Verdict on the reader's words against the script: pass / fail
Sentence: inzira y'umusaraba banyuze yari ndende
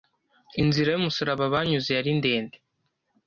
pass